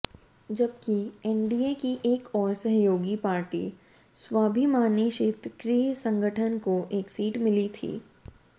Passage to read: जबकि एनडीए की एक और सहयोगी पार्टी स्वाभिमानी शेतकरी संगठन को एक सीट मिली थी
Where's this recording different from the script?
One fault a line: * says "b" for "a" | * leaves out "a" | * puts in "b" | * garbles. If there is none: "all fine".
all fine